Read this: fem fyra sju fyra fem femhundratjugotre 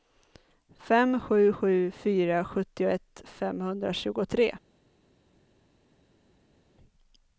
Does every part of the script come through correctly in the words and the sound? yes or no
no